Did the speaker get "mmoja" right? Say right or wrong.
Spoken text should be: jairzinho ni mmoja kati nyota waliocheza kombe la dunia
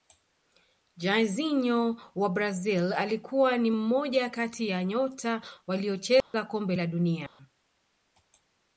right